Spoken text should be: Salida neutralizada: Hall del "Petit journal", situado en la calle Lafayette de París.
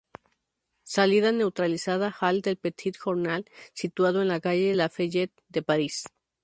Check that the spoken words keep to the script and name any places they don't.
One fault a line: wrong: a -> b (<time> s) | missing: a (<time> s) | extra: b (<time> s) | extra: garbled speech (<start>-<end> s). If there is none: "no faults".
no faults